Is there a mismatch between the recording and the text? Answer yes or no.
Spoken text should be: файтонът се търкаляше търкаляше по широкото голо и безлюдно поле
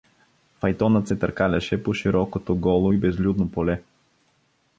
yes